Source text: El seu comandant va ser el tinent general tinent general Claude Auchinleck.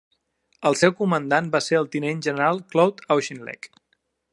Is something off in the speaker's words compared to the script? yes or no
yes